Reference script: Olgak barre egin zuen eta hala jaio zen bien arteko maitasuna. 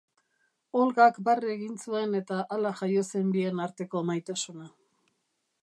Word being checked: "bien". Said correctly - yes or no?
yes